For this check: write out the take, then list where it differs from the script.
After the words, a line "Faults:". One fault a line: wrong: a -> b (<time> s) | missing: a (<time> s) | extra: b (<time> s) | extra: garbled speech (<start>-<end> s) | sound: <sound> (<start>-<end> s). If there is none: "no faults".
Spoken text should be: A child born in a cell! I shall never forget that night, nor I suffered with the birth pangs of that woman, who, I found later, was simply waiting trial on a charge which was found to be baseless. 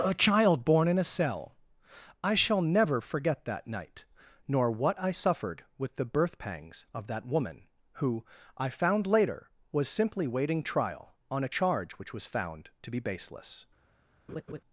A child born in a cell! I shall never forget that night, nor what I suffered with the birth pangs of that woman, who, I found later, was simply waiting trial on a charge which was found to be baseless.
Faults:
extra: what (4.7 s)
sound: laugh (14.3-14.6 s)